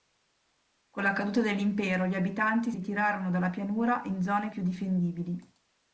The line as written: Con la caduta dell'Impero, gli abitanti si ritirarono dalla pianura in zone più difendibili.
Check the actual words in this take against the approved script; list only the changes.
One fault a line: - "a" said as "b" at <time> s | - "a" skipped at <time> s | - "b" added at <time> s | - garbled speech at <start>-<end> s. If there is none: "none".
- "si" skipped at 2.7 s